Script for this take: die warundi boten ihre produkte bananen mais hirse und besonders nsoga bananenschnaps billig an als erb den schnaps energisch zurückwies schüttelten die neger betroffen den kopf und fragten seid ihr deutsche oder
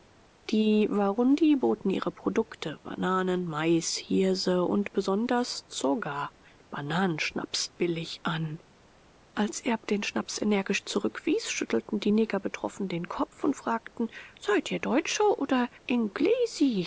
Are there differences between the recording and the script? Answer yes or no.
no